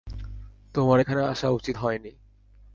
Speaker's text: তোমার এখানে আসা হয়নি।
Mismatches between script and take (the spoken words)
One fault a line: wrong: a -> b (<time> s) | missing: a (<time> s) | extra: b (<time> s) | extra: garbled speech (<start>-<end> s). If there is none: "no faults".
extra: উচিত (1.5 s)